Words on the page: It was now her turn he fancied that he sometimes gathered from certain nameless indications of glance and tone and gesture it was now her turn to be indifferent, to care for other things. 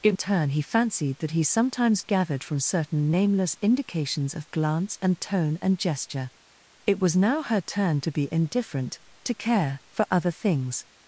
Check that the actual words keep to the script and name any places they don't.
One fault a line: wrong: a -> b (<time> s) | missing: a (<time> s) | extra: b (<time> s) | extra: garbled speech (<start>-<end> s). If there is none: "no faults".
missing: was now her (0.1 s)